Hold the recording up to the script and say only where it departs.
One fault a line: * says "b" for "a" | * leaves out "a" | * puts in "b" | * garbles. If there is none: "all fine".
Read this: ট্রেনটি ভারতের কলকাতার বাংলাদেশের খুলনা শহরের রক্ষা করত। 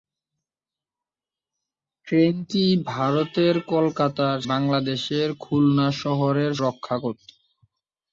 all fine